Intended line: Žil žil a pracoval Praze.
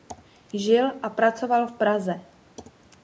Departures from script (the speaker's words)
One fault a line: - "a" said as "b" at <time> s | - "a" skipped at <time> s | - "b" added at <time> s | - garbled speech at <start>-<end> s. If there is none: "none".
- "žil" skipped at 0.9 s
- "v" added at 1.6 s